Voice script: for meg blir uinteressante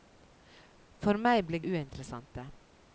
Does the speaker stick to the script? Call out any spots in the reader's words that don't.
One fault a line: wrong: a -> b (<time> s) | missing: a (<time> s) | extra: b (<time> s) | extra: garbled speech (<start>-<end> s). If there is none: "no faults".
no faults